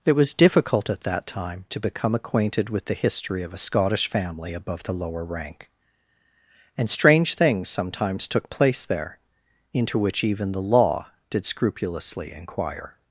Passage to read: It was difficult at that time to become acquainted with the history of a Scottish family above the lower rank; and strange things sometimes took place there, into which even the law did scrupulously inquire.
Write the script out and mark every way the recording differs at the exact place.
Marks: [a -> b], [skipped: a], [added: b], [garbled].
It was difficult at that time to become acquainted with the history of a Scottish family above the lower rank; and strange things sometimes took place there, into which even the law did scrupulously inquire.